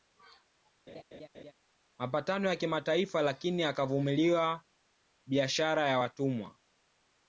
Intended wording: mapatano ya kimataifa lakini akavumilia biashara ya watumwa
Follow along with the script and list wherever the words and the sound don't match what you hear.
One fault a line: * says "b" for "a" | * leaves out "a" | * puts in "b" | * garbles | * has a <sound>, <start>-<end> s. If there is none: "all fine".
* has a laugh, 0.9-1.5 s